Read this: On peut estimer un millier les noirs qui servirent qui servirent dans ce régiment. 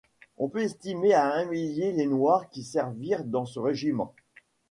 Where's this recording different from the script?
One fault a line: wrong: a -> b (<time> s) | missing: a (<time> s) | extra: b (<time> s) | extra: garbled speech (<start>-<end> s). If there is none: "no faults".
extra: à (1.1 s)
missing: qui servirent (3.2 s)